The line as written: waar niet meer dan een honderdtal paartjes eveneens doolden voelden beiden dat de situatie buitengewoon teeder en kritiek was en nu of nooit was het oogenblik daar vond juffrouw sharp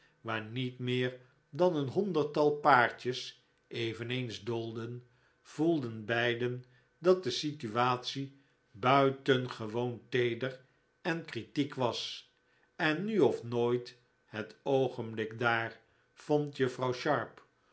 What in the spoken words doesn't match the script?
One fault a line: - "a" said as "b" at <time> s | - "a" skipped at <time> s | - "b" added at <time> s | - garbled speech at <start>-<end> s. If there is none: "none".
- "was" skipped at 14.0 s